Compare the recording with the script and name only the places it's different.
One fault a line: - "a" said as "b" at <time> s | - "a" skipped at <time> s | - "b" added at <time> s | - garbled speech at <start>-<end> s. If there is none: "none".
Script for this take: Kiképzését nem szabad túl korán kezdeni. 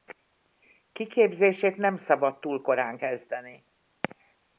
none